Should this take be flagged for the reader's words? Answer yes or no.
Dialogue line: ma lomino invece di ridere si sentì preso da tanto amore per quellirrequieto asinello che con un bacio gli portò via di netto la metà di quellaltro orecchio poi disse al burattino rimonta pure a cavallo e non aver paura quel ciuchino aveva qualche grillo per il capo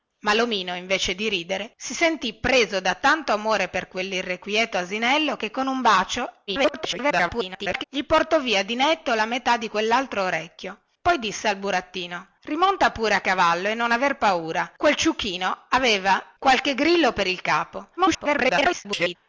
yes